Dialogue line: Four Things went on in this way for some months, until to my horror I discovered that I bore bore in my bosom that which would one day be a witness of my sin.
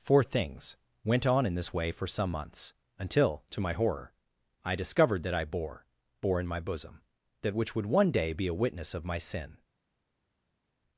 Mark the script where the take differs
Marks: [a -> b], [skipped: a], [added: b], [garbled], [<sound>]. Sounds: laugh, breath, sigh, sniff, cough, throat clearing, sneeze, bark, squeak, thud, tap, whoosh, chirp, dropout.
Four Things went on in this way for some months, until to my horror I discovered that I bore bore in my bosom that which would one day be a witness of my sin.